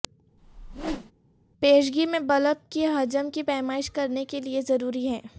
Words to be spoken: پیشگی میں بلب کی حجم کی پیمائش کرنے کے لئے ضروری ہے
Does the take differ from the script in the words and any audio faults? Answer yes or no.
yes